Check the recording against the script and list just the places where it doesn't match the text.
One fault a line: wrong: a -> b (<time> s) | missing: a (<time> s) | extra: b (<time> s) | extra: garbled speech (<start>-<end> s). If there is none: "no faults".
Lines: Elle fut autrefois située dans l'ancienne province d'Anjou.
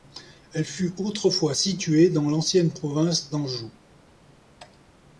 no faults